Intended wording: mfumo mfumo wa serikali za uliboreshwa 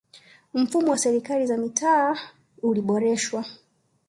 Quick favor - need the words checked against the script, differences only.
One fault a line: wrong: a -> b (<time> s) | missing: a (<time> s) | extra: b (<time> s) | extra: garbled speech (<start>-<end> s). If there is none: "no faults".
missing: mfumo (0.9 s)
extra: mitaa (1.6 s)